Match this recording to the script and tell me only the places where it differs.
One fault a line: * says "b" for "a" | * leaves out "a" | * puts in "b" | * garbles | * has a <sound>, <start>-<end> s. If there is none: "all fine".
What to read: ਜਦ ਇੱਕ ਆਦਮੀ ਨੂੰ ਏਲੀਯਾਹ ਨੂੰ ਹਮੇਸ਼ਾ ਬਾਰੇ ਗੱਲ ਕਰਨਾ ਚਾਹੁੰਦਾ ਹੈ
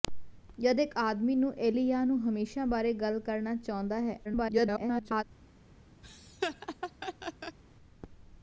* garbles
* has a laugh, 6.0-7.6 s